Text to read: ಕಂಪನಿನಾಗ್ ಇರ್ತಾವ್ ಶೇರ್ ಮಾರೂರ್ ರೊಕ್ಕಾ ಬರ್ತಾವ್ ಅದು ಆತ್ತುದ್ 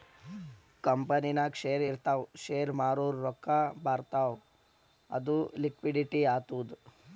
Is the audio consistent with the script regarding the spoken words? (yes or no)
no